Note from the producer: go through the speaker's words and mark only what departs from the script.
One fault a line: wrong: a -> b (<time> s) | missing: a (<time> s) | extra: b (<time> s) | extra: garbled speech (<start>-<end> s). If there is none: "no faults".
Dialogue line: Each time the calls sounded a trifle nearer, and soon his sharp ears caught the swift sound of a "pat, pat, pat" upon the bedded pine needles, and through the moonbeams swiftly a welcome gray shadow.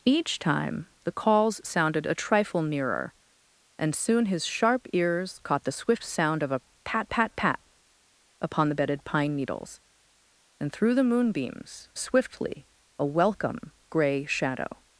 no faults